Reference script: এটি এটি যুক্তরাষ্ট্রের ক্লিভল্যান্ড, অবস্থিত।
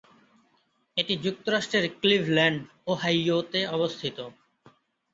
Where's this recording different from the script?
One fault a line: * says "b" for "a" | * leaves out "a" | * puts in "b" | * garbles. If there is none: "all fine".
* leaves out "এটি"
* puts in "ওহাইওতে"